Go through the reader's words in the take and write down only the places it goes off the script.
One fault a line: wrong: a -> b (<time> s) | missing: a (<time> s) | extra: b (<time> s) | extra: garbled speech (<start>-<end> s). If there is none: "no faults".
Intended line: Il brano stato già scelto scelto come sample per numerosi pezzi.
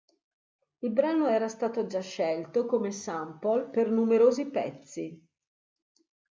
extra: era (1.2 s)
missing: scelto (2.6 s)